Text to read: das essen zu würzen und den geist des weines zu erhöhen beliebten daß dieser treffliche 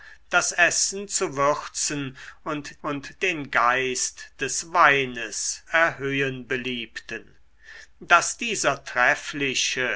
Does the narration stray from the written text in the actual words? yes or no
yes